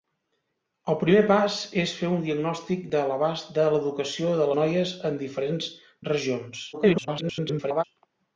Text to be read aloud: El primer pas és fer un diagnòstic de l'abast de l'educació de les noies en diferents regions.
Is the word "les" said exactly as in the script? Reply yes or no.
no